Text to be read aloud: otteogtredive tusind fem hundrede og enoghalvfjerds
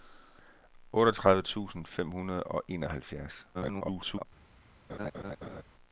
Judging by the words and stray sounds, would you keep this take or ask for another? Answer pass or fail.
fail